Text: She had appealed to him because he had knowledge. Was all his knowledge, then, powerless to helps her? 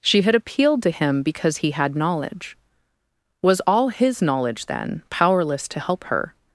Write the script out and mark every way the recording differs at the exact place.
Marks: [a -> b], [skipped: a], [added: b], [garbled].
She had appealed to him because he had knowledge. Was all his knowledge, then, powerless to [helps -> help] her?